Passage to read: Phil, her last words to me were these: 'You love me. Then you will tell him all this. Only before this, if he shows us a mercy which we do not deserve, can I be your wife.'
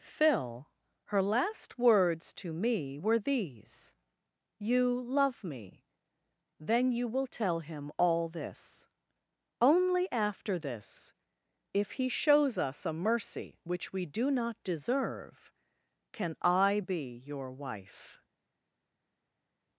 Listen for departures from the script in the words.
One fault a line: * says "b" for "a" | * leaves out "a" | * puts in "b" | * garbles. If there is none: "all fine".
* says "after" for "before"